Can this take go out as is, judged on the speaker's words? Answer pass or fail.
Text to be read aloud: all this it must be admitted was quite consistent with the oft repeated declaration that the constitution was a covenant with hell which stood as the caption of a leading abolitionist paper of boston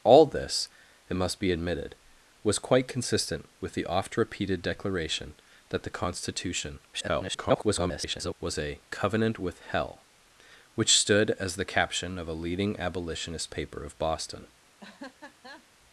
fail